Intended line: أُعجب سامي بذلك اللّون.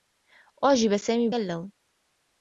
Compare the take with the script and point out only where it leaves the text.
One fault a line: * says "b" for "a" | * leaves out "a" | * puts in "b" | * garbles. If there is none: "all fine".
* leaves out "بذلك"